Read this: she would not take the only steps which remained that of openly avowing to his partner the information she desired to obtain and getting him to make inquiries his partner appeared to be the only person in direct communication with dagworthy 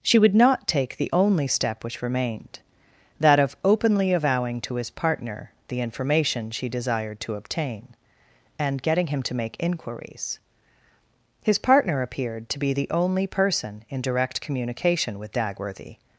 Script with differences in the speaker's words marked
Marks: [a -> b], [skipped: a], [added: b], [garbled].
she would not take the only [steps -> step] which remained that of openly avowing to his partner the information she desired to obtain and getting him to make inquiries his partner appeared to be the only person in direct communication with dagworthy